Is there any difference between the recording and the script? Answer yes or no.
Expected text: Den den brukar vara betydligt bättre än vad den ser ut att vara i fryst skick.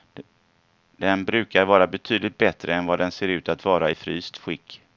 yes